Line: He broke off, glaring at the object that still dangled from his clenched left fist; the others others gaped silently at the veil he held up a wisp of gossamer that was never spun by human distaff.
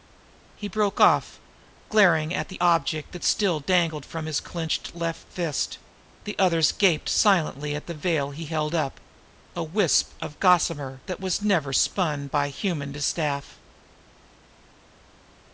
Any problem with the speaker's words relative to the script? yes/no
yes